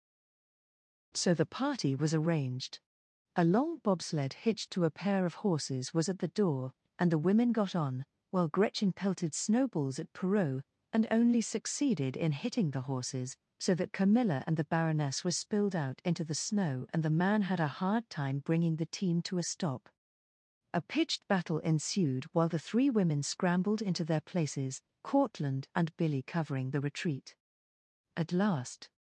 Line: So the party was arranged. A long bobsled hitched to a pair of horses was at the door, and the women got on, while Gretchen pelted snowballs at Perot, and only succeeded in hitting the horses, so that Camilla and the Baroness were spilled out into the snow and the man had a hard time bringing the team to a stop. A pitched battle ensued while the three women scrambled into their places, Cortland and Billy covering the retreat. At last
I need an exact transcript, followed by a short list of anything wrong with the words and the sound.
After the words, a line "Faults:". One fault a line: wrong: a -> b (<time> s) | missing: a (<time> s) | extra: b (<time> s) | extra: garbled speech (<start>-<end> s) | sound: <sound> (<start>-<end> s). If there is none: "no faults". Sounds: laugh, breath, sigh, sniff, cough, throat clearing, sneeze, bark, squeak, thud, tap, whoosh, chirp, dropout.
So the party was arranged. A long bobsled hitched to a pair of horses was at the door, and the women got on, while Gretchen pelted snowballs at Perot, and only succeeded in hitting the horses, so that Camilla and the Baroness were spilled out into the snow and the man had a hard time bringing the team to a stop. A pitched battle ensued while the three women scrambled into their places, Cortland and Billy covering the retreat. At last
Faults:
no faults